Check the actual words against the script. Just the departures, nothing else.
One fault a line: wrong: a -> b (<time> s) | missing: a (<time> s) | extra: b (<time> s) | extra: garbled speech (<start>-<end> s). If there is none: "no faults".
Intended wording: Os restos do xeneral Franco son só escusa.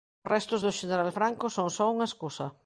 extra: unha (1.9 s)